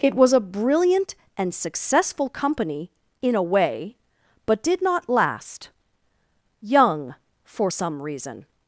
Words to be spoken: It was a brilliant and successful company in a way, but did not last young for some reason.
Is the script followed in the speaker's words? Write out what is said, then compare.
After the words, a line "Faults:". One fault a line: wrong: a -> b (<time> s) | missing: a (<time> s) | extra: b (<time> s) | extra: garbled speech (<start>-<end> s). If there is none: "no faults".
It was a brilliant and successful company in a way, but did not last young for some reason.
Faults:
no faults